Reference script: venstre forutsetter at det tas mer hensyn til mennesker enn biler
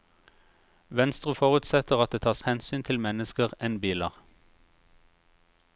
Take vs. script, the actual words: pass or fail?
fail